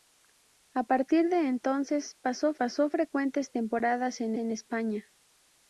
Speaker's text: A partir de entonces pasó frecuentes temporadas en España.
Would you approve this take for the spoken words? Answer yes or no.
no